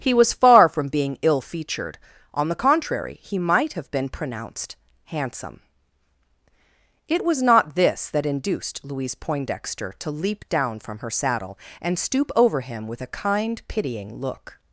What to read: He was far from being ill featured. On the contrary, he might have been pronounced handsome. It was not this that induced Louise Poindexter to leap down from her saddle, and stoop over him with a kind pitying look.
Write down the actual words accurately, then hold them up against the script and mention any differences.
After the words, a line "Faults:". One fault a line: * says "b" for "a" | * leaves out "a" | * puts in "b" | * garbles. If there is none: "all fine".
He was far from being ill featured. On the contrary, he might have been pronounced handsome. It was not this that induced Louise Poindexter to leap down from her saddle, and stoop over him with a kind pitying look.
Faults:
all fine